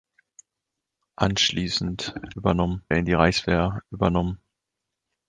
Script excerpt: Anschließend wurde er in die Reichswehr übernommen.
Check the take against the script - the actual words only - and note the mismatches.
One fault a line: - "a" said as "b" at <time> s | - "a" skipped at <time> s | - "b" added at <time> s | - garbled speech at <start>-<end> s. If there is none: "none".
- "wurde" said as "übernommen" at 2.4 s